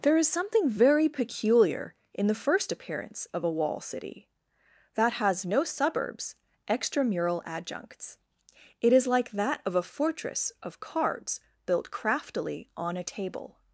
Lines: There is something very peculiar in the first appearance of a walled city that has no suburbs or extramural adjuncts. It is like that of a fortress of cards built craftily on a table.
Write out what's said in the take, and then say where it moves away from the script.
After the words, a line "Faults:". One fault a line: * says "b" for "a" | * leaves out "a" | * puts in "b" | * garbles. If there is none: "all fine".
There is something very peculiar in the first appearance of a wall city that has no suburbs extramural adjuncts. It is like that of a fortress of cards built craftily on a table.
Faults:
* says "wall" for "walled"
* leaves out "or"